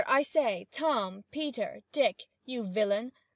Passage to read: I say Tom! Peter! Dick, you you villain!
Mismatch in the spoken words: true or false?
true